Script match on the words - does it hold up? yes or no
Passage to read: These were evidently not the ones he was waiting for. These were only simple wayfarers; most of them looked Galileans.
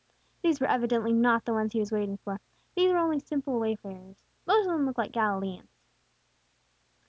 no